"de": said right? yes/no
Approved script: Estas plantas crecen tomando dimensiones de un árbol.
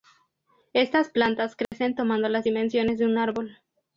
yes